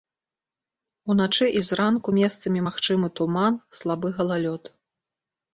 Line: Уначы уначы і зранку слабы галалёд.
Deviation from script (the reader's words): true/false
true